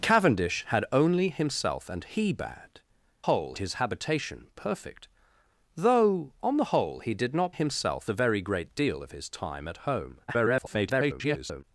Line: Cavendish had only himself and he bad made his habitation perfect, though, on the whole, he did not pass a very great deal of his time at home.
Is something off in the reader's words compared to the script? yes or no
yes